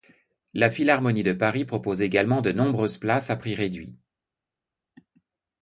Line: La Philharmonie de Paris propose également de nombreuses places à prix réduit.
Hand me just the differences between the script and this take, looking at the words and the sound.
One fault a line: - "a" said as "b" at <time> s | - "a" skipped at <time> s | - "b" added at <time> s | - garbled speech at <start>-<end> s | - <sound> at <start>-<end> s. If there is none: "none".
none